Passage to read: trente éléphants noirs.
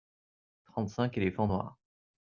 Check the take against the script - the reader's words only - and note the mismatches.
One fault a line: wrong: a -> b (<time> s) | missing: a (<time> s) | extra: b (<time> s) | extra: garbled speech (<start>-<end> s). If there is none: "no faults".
extra: cinq (0.9 s)